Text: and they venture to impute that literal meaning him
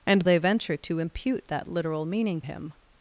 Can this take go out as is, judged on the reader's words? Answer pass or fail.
pass